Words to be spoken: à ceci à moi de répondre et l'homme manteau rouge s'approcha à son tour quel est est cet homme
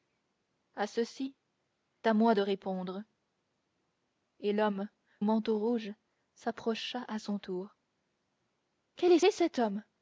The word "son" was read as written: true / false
true